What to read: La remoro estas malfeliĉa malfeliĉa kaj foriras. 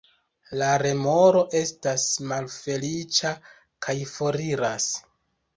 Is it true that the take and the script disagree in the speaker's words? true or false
true